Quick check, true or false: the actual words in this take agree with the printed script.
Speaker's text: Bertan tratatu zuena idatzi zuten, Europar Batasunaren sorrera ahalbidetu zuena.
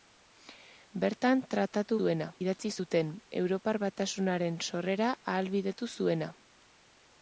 true